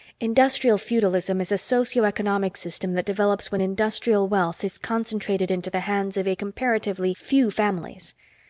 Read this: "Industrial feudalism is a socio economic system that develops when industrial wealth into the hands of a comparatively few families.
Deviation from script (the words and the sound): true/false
true